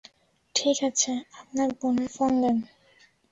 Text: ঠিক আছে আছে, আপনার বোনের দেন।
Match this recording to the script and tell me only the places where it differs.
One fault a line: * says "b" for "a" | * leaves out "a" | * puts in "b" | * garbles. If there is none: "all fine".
* leaves out "আছে"
* puts in "ফোন"